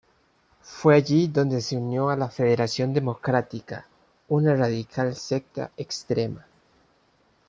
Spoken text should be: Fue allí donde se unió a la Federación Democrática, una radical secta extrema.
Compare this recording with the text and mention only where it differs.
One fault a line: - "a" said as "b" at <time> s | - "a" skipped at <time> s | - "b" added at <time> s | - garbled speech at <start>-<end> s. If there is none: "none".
none